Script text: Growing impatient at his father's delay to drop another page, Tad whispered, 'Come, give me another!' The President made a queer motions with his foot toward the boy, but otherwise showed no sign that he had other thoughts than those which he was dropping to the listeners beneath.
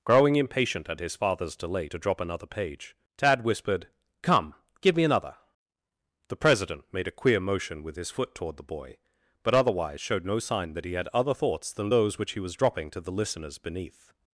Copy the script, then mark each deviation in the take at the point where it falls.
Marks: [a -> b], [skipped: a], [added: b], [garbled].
Growing impatient at his father's delay to drop another page, Tad whispered, 'Come, give me another!' The President made a queer [motions -> motion] with his foot toward the boy, but otherwise showed no sign that he had other thoughts than those which he was dropping to the listeners beneath.